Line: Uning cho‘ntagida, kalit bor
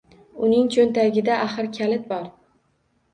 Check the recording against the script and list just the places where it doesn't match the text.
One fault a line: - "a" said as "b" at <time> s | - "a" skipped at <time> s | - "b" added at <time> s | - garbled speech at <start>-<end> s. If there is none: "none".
- "axir" added at 1.5 s